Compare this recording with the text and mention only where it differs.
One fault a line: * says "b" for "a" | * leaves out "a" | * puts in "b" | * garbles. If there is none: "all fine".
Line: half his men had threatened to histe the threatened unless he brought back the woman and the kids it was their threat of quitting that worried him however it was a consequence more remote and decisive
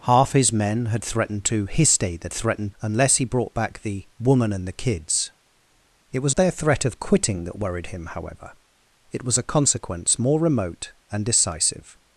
all fine